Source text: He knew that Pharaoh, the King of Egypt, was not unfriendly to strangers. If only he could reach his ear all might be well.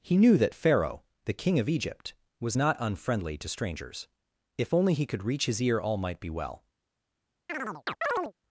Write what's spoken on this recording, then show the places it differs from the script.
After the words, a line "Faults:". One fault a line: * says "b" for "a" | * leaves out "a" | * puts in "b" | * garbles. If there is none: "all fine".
He knew that Pharaoh, the King of Egypt, was not unfriendly to strangers. If only he could reach his ear all might be well.
Faults:
all fine